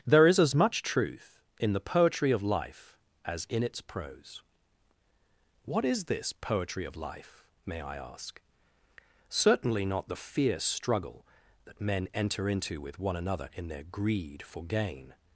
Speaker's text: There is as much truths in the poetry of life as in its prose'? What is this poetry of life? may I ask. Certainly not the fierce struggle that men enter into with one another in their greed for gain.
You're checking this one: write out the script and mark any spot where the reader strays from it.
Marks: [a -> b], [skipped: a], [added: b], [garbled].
There is as much [truths -> truth] in the poetry of life as in its prose'? What is this poetry of life? may I ask. Certainly not the fierce struggle that men enter into with one another in their greed for gain.